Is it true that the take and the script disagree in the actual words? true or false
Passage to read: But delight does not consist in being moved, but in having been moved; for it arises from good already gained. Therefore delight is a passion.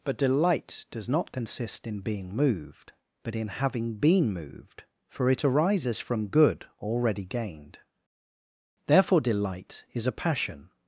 false